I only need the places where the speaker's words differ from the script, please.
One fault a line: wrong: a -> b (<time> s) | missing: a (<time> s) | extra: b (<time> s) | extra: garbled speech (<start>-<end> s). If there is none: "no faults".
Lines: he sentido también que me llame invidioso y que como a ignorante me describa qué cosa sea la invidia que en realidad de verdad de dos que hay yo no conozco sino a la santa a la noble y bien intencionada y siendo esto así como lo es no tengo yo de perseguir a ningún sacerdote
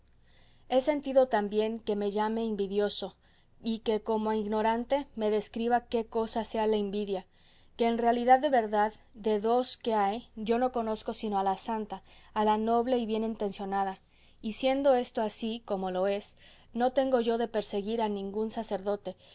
no faults